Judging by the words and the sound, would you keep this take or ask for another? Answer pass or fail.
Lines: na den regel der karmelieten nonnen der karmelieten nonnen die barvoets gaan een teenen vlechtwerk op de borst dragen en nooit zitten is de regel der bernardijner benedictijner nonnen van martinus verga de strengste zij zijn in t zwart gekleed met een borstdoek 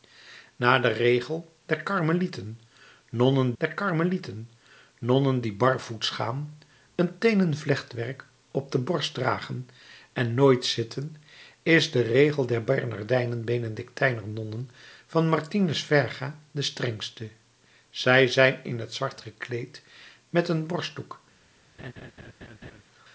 fail